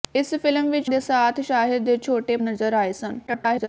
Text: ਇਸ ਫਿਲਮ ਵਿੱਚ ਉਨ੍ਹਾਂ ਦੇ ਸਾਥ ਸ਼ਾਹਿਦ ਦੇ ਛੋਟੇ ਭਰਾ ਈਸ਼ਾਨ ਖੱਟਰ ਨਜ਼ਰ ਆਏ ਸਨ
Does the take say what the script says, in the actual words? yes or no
no